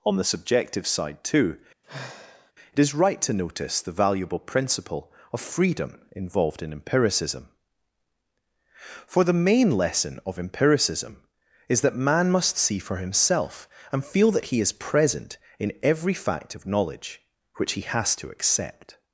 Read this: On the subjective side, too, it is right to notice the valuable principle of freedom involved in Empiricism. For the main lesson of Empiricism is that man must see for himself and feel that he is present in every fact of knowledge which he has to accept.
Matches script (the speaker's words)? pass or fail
pass